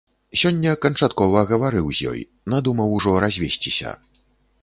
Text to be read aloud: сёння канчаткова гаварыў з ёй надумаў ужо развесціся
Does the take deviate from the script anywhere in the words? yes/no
no